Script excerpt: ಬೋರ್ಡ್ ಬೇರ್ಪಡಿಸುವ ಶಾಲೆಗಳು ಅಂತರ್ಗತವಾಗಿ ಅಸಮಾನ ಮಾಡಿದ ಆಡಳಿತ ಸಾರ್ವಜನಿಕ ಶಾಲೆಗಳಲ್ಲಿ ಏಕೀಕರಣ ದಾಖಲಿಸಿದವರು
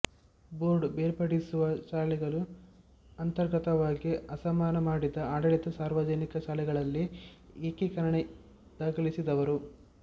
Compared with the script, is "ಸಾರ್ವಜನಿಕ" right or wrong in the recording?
right